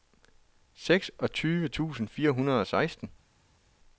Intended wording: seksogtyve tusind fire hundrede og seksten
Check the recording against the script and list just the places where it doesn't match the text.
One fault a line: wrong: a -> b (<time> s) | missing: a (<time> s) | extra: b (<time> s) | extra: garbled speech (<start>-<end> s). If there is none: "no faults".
no faults